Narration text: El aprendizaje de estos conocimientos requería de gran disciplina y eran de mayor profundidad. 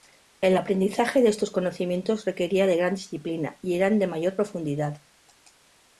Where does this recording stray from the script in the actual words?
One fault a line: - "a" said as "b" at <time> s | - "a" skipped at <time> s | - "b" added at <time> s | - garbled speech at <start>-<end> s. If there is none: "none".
none